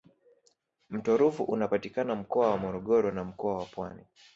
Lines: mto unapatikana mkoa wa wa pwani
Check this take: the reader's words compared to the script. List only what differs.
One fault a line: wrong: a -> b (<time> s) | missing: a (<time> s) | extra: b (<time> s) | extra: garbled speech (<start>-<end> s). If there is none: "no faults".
extra: ruvu (1.2 s)
extra: morogoro na mkoa (2.6 s)